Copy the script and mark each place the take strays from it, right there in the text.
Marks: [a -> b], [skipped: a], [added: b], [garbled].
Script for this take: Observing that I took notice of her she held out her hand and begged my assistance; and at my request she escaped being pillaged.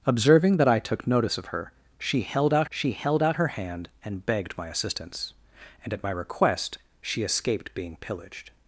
Observing that I took notice of her she held out [added: she held out] her hand and begged my assistance; and at my request she escaped being pillaged.